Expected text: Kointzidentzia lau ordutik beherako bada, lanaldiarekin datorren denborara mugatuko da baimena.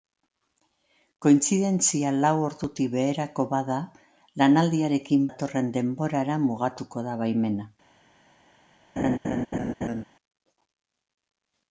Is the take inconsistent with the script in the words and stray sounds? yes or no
yes